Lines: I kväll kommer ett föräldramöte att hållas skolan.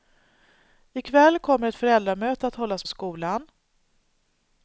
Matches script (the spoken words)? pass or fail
pass